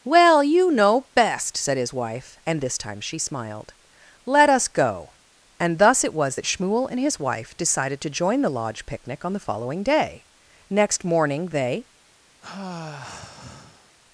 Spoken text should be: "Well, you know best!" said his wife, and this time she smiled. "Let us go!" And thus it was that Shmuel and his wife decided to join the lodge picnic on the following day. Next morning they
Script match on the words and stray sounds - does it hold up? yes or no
no